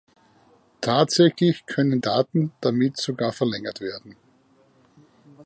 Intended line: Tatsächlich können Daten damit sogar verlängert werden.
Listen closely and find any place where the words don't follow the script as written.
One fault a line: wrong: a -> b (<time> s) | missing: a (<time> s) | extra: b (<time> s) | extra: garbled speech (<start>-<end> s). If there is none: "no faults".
no faults